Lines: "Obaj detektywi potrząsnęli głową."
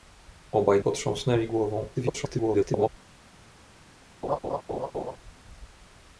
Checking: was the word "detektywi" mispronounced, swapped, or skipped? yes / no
yes